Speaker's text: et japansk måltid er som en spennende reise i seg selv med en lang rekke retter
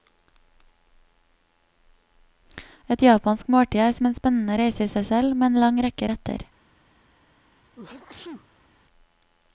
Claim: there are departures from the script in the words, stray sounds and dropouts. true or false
true